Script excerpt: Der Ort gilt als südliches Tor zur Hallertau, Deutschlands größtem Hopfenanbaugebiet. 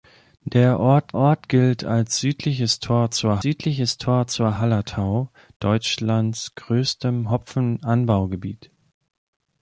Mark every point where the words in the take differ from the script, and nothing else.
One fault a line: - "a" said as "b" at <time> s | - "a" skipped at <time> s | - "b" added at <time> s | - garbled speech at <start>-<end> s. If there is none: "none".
- "Ort" added at 1.1 s
- "südliches Tor zur" added at 3.4 s